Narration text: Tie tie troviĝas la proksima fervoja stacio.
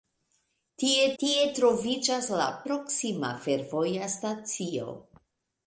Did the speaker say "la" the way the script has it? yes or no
yes